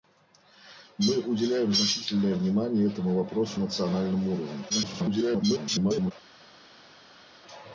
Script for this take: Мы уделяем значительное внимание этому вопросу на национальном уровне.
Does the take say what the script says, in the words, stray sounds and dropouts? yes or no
no